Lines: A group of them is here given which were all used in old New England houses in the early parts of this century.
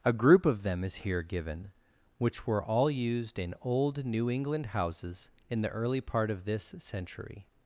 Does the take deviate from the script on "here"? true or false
false